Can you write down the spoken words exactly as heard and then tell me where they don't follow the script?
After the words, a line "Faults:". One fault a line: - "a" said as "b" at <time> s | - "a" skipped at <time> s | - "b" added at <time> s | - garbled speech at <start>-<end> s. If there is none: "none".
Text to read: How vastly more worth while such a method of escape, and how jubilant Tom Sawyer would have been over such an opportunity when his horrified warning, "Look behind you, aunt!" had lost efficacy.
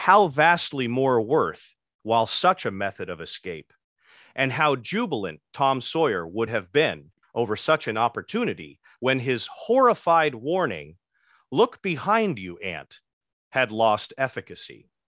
How vastly more worth while such a method of escape, and how jubilant Tom Sawyer would have been over such an opportunity when his horrified warning, "Look behind you, aunt!" had lost efficacy.
Faults:
none